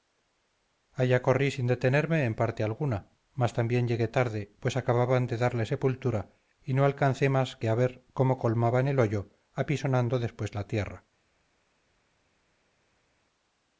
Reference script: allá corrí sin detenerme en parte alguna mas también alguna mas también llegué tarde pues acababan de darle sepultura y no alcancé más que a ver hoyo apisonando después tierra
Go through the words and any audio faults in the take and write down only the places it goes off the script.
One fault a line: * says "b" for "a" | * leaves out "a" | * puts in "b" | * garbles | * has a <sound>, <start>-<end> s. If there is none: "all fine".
* leaves out "alguna mas también"
* puts in "cómo colmaban el"
* puts in "la"